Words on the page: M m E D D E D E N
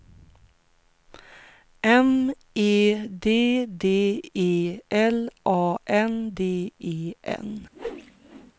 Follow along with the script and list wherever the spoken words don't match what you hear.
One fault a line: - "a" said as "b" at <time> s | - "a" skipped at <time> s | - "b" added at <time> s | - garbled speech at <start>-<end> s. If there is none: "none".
- "m" skipped at 2.3 s
- "L A N" added at 4.9 s